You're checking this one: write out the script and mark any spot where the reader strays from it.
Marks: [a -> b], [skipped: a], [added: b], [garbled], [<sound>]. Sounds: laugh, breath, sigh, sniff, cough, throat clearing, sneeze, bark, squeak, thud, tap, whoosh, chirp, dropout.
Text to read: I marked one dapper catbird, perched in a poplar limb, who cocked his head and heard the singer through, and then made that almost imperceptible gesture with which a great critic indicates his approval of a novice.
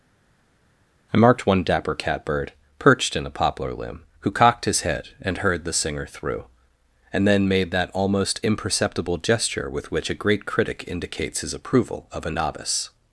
I marked one dapper catbird, perched in a poplar limb, who cocked his head and heard the singer through, and then made that almost imperceptible gesture with which a great critic indicates his approval of a novice.